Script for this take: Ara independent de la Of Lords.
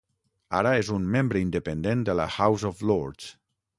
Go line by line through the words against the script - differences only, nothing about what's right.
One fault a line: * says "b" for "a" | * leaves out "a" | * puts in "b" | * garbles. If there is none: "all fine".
* puts in "és un membre"
* puts in "House"